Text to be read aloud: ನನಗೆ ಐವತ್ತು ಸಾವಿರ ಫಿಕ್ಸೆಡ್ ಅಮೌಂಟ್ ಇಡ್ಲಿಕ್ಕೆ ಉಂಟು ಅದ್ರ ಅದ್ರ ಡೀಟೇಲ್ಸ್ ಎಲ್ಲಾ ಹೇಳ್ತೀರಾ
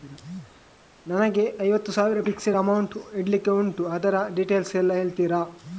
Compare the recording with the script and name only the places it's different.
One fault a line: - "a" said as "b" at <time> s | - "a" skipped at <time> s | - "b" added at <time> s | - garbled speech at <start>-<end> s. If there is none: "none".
- "ಅದ್ರ" skipped at 4.1 s